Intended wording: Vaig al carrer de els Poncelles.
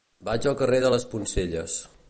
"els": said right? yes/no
no